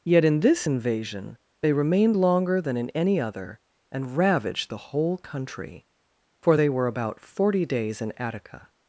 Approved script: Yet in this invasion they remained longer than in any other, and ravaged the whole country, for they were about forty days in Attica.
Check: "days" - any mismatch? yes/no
no